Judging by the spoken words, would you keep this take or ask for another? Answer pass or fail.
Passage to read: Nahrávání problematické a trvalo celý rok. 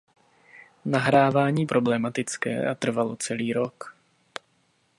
pass